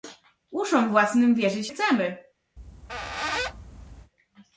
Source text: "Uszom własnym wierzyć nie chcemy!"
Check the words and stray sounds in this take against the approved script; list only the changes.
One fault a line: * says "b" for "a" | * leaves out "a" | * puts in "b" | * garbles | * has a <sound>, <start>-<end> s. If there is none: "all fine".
* leaves out "nie"
* has a squeak, 2.6-4.1 s